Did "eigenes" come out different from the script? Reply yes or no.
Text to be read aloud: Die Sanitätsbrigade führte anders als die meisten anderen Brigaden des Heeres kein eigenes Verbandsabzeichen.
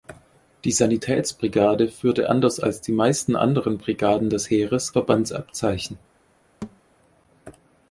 yes